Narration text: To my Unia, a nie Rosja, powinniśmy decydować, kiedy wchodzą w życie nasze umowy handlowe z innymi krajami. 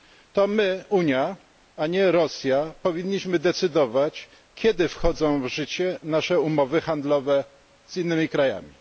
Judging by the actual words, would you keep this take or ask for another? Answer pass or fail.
pass